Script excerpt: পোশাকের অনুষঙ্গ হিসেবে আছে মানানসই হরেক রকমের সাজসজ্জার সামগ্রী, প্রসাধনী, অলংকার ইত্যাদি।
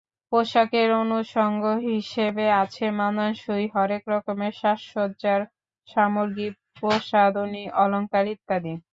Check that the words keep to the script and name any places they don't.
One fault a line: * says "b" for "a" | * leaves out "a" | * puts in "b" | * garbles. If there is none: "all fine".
all fine